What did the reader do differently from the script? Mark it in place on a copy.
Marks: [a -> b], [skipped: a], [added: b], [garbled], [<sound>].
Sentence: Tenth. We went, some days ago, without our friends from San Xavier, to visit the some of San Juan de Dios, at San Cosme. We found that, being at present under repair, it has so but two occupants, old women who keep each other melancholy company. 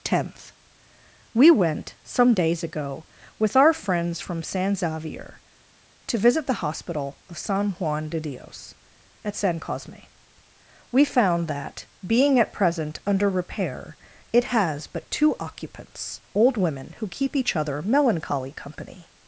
Tenth. We went, some days ago, [without -> with] our friends from San Xavier, to visit the [some -> hospital] of San Juan de Dios, at San Cosme. We found that, being at present under repair, it has [skipped: so] but two occupants, old women who keep each other melancholy company.